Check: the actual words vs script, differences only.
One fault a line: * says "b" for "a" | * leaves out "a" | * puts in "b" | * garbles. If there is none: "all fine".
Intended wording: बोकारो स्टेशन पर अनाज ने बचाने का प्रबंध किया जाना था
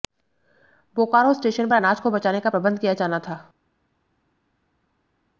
* says "को" for "ने"